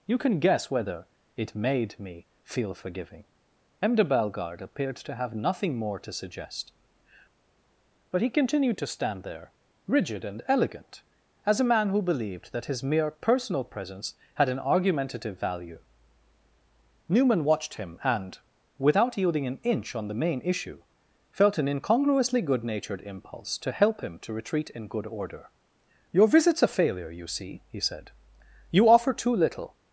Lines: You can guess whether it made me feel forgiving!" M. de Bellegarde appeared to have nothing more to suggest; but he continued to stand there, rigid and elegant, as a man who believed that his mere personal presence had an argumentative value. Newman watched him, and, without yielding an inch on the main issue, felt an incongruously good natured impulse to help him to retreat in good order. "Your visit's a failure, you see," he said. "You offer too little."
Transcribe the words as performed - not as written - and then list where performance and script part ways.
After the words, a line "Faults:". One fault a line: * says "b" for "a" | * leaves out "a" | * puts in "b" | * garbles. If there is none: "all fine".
You can guess whether it made me feel forgiving!" M. de Bellegarde appeared to have nothing more to suggest; but he continued to stand there, rigid and elegant, as a man who believed that his mere personal presence had an argumentative value. Newman watched him, and, without yielding an inch on the main issue, felt an incongruously good natured impulse to help him to retreat in good order. "Your visit's a failure, you see," he said. "You offer too little."
Faults:
all fine